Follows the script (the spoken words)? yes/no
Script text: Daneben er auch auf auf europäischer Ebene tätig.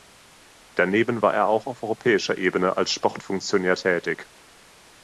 no